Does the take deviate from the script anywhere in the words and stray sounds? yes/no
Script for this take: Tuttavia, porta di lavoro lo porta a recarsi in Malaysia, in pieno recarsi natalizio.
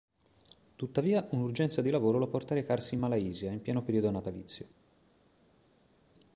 yes